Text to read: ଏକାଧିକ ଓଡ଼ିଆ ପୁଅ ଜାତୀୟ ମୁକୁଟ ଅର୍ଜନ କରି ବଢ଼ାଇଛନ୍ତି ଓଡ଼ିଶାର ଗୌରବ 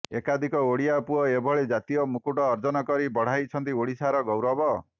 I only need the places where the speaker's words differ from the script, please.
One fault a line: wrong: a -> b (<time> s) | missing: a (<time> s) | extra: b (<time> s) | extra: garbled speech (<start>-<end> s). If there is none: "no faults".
extra: ଏଭଳି (1.3 s)